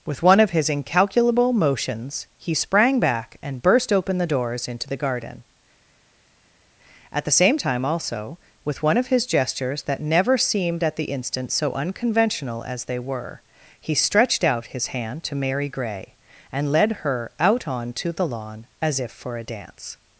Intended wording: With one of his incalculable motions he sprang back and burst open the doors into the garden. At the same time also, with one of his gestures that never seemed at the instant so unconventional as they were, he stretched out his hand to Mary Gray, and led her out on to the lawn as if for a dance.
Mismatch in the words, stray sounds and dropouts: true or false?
false